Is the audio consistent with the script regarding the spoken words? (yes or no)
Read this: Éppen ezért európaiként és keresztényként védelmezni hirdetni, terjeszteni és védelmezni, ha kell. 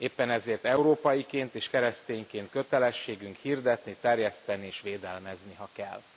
no